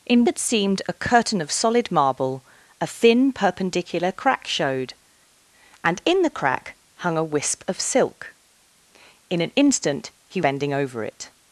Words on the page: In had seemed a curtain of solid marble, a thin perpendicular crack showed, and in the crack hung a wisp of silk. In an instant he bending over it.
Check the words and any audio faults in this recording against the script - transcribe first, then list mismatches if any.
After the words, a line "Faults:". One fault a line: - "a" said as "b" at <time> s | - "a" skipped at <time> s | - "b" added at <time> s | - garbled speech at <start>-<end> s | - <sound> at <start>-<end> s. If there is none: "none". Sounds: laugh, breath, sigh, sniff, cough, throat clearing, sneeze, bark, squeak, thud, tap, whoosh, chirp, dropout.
In had seemed a curtain of solid marble, a thin perpendicular crack showed, and in the crack hung a wisp of silk. In an instant he bending over it.
Faults:
none